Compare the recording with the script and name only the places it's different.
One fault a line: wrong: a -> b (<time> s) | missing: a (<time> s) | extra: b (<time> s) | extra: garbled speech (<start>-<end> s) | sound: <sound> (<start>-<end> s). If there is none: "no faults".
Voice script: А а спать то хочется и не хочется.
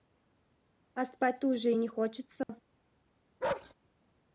missing: а (1.1 s)
wrong: хочется -> уже (1.5 s)
sound: dropout (2.4-2.5 s)
sound: bark (3.4-3.7 s)